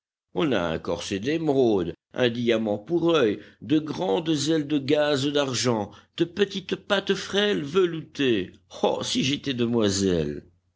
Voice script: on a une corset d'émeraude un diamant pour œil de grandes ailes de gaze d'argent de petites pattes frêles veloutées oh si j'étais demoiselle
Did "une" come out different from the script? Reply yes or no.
yes